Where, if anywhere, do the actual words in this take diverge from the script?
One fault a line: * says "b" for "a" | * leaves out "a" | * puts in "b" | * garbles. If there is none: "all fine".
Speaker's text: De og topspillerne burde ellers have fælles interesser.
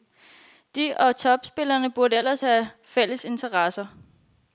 all fine